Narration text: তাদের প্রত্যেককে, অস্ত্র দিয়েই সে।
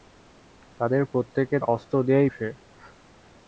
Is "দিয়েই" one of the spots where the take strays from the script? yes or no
no